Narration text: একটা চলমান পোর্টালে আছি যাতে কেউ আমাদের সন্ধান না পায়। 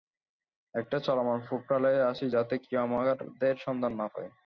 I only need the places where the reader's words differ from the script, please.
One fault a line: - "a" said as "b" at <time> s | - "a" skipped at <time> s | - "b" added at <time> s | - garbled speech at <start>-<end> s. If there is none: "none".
none